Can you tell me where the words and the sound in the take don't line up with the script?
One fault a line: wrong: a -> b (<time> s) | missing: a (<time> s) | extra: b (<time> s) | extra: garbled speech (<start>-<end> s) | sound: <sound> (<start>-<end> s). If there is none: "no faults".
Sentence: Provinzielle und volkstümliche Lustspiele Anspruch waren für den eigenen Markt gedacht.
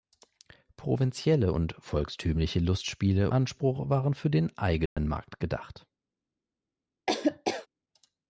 sound: dropout (4.9-5.0 s)
sound: laugh (7.1-7.7 s)